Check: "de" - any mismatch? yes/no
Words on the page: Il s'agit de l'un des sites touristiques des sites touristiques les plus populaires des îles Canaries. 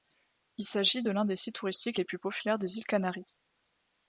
no